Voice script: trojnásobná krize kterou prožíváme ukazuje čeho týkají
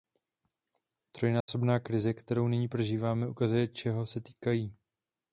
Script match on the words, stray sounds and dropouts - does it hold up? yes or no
no